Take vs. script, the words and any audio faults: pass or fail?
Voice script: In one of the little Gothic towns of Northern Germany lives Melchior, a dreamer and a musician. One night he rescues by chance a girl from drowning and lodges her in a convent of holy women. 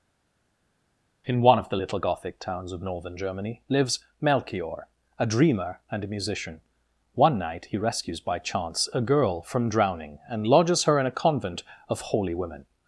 pass